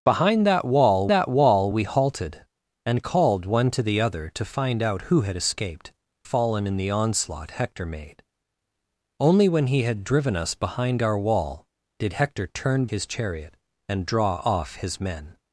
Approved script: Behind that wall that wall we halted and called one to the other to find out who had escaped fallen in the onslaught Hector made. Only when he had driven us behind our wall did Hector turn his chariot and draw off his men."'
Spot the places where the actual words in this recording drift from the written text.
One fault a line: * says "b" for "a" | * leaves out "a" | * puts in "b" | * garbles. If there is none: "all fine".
all fine